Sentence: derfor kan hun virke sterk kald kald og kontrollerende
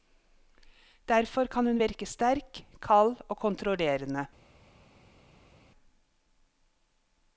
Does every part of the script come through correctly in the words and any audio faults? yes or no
no